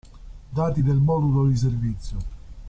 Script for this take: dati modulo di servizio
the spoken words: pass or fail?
fail